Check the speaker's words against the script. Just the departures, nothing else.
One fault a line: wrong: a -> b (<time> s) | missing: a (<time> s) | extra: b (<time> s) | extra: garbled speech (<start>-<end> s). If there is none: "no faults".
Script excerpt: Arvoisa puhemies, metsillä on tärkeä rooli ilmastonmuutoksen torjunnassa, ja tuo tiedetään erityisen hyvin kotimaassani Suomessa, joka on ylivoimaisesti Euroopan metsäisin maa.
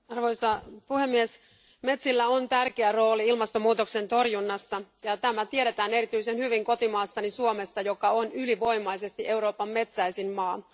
wrong: tuo -> tämä (5.2 s)